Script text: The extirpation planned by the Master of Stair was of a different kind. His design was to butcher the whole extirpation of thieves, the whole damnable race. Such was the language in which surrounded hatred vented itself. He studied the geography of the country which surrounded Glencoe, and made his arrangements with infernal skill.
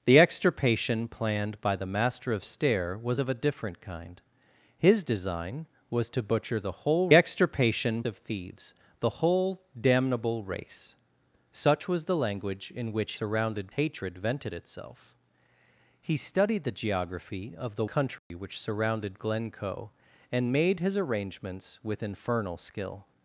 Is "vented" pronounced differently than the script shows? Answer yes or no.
no